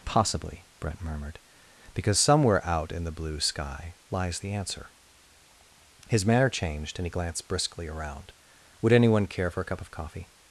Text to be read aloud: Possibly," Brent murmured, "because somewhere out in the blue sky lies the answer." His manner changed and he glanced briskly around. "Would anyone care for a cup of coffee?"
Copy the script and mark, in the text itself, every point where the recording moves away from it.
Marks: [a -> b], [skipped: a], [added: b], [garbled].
Possibly," Brent murmured, "because somewhere out in the blue sky lies the answer." His manner changed and he glanced briskly around. "Would anyone care for a cup of coffee?"